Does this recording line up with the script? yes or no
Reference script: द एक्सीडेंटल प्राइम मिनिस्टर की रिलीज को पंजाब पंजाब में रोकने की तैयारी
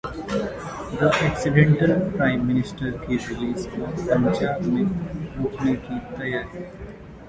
no